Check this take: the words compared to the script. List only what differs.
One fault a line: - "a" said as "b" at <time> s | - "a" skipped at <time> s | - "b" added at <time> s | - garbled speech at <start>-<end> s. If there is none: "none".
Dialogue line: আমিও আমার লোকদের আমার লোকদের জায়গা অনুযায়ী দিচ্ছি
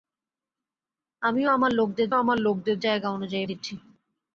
none